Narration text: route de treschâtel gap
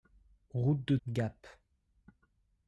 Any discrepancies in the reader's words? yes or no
yes